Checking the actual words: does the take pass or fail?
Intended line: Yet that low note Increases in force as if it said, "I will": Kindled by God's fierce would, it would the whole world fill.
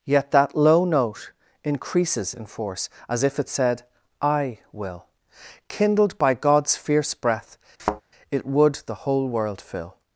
fail